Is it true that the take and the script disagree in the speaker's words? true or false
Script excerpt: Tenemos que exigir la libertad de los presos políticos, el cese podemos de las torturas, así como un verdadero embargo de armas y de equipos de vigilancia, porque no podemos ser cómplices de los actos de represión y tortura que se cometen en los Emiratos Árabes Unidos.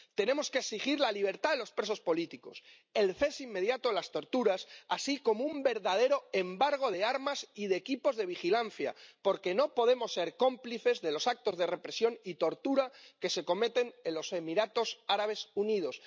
true